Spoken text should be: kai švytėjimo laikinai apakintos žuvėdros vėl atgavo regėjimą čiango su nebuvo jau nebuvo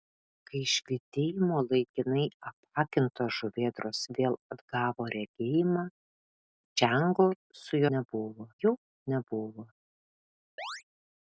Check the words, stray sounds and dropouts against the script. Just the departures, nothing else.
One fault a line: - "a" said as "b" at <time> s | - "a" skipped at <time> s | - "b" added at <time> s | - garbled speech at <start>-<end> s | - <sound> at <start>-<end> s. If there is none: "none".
- chirp at 10.6-10.8 s